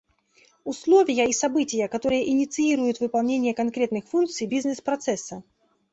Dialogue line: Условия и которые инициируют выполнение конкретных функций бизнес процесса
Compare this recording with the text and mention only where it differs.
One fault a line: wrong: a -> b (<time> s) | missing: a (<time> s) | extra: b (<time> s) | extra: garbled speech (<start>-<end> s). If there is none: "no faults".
extra: события (1.3 s)